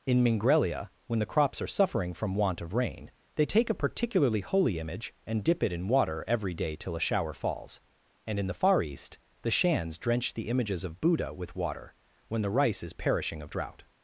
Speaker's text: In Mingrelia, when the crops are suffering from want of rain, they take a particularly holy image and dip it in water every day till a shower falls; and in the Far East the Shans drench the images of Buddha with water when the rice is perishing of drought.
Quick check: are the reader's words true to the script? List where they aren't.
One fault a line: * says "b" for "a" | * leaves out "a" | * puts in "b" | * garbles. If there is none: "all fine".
all fine